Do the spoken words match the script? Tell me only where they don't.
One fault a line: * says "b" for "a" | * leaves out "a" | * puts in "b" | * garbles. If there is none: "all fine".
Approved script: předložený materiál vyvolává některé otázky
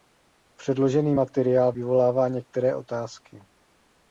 all fine